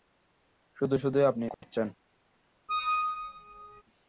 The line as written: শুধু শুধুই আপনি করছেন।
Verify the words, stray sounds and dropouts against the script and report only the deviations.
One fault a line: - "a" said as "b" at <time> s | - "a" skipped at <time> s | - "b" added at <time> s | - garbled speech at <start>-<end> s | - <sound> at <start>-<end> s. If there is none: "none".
- dropout at 1.5-1.6 s
- squeak at 2.7-3.8 s